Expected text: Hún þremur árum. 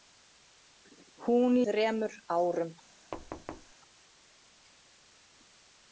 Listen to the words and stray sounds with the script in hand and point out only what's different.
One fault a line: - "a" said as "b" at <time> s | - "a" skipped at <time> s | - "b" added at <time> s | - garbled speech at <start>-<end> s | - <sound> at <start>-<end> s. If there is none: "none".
- thud at 3.1-3.7 s